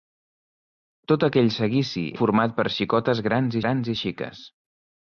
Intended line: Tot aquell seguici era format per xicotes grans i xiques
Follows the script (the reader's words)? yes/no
no